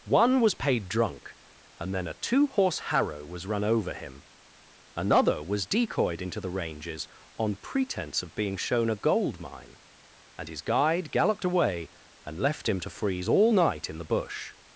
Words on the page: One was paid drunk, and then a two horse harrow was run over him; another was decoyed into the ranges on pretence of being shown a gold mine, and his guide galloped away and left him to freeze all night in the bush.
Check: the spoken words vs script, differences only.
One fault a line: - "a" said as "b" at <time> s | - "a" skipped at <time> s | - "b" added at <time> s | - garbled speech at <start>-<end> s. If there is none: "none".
none